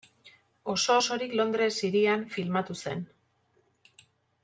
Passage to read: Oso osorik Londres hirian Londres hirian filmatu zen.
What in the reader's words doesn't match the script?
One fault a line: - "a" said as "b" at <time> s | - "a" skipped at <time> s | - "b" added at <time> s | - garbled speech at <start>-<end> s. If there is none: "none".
- "Londres hirian" skipped at 2.2 s